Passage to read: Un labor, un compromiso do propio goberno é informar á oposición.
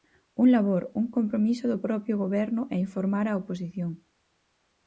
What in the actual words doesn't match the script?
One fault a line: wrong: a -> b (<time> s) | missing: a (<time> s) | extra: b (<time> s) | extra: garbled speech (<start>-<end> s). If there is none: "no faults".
no faults